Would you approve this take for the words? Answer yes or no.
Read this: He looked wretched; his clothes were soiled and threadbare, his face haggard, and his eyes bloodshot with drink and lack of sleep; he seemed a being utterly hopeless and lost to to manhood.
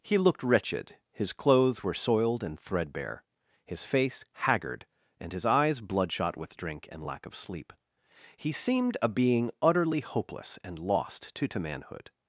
yes